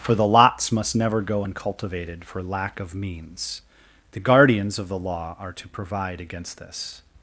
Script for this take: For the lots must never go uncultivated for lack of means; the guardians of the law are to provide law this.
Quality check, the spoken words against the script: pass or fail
fail